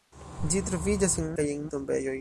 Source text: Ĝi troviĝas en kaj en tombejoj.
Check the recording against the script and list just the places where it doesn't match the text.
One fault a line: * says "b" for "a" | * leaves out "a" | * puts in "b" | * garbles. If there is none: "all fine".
all fine